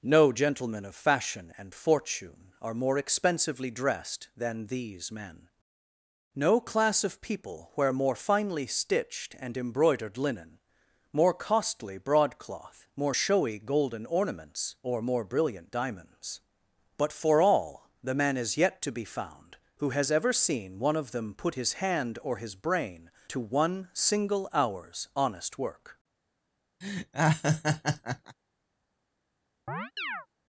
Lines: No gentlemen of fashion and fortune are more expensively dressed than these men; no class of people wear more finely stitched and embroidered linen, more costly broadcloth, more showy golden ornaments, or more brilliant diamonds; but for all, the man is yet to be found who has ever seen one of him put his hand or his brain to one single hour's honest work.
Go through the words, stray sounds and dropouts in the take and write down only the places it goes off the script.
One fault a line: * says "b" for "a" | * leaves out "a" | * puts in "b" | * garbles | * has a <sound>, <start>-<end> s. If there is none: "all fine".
* says "them" for "him"
* has a laugh, 26.8-28.4 s
* has a chirp, 29.7-30.3 s